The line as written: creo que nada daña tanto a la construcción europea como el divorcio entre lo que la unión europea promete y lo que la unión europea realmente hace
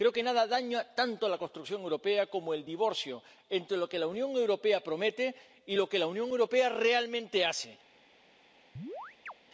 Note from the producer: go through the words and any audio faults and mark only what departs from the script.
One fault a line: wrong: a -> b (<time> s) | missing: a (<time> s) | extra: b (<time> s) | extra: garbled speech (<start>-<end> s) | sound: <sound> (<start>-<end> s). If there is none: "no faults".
sound: chirp (8.8-9.3 s)